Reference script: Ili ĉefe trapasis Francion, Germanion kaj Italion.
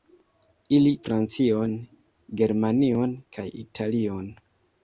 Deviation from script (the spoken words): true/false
true